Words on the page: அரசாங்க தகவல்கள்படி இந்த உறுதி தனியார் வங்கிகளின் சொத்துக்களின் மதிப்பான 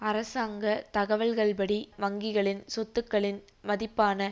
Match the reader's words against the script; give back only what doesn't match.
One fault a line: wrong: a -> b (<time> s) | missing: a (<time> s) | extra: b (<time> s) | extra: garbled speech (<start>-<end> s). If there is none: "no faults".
missing: இந்த உறுதி தனியார் (1.8 s)